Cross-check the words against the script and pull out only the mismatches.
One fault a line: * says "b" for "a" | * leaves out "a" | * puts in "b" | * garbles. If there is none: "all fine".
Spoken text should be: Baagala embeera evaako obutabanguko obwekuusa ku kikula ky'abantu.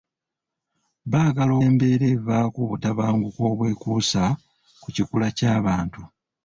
all fine